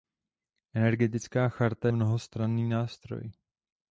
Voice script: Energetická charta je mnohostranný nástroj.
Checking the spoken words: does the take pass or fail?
fail